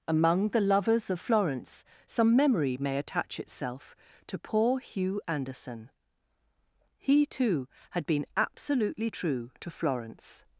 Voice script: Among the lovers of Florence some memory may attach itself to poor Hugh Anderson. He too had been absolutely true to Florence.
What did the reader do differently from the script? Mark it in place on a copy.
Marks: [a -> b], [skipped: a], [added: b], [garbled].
Among the lovers of Florence some memory may attach itself to poor Hugh Anderson. He too had been absolutely true to Florence.